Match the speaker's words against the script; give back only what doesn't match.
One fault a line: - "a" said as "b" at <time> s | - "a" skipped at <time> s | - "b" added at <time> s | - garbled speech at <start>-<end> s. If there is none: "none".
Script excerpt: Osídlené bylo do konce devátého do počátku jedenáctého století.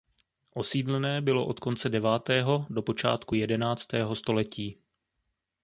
- "do" said as "od" at 1.4 s